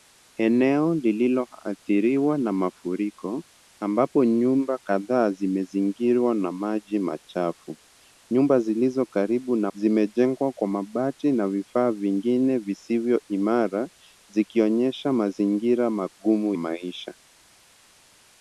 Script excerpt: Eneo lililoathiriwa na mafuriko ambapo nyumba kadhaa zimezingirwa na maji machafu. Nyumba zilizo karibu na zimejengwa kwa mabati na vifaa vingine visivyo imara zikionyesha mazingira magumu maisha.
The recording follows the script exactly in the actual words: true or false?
true